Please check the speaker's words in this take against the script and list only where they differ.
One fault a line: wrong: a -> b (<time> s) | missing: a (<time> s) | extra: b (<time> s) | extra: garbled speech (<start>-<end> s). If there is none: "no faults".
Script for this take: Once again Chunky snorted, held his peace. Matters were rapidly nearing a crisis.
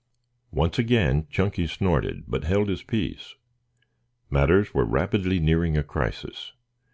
extra: but (2.2 s)